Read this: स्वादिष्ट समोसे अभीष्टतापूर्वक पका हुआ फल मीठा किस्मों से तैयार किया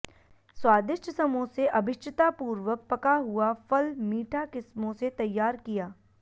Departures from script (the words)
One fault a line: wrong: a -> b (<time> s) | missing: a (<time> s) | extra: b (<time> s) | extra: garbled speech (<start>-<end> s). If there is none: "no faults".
no faults